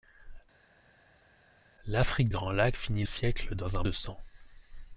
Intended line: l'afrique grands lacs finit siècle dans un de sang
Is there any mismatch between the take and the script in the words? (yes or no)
no